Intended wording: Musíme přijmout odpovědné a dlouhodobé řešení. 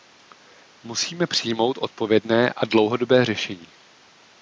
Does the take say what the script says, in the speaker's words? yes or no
yes